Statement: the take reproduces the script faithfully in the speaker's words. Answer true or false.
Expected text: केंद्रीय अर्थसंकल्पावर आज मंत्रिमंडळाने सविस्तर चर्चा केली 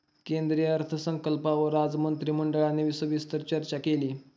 true